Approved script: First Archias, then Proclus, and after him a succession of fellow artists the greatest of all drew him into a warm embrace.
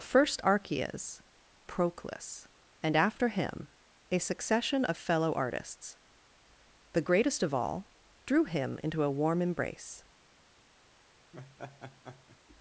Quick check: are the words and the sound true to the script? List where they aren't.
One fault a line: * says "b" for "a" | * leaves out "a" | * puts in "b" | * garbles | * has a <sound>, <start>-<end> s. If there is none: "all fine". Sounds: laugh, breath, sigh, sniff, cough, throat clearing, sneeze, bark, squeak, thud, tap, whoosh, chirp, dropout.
* leaves out "then"
* has a laugh, 11.3-12.4 s